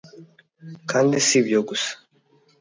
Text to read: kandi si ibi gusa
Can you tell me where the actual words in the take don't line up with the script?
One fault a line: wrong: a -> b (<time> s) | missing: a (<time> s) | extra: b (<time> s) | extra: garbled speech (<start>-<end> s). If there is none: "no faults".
wrong: ibi -> ibyo (1.4 s)